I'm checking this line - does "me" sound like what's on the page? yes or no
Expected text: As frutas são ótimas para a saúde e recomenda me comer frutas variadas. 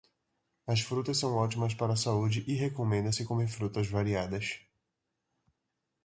no